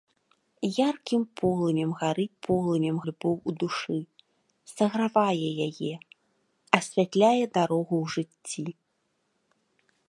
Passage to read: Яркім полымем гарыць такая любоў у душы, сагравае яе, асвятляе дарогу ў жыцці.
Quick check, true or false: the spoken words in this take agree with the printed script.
false